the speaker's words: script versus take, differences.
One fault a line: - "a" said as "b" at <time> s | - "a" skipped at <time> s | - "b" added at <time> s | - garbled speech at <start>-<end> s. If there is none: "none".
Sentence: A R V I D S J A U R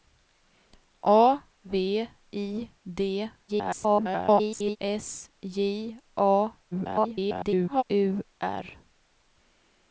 - "R" skipped at 1.4 s
- garbled speech at 3.5-4.8 s
- garbled speech at 6.7-7.8 s